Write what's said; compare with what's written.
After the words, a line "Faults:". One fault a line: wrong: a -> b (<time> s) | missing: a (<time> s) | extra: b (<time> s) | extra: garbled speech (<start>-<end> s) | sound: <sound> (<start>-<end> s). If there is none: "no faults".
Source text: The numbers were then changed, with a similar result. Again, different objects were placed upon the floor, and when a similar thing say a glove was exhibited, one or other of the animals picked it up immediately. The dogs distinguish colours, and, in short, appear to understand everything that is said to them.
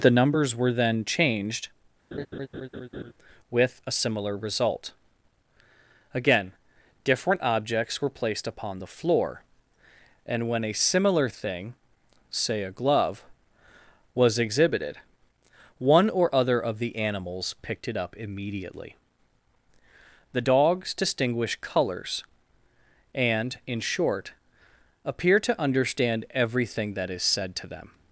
The numbers were then changed, with a similar result. Again, different objects were placed upon the floor, and when a similar thing say a glove was exhibited, one or other of the animals picked it up immediately. The dogs distinguish colours, and, in short, appear to understand everything that is said to them.
Faults:
sound: laugh (2.1-3.1 s)